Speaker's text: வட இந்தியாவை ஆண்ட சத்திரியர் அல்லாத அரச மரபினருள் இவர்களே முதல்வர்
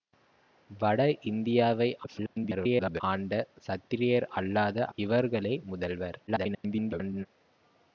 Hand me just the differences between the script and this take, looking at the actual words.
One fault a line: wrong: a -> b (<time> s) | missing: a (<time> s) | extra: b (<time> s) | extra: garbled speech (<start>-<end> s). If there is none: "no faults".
extra: garbled speech (2.0-3.0 s)
missing: அரச மரபினருள் (4.9 s)
extra: garbled speech (6.3-7.3 s)